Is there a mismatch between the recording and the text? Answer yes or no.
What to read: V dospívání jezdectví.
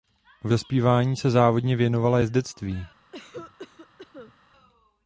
yes